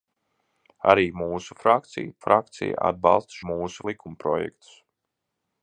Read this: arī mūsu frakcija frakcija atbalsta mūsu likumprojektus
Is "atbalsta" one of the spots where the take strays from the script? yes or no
no